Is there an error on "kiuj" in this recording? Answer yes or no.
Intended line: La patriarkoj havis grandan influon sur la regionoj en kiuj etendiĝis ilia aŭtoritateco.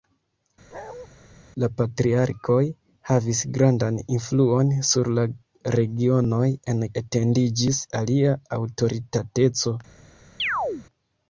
yes